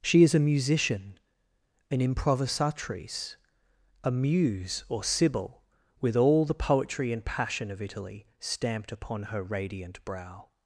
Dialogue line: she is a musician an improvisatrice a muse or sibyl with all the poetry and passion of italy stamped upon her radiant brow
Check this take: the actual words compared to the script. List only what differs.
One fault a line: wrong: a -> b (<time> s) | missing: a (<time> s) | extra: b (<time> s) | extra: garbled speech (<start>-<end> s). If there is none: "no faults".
no faults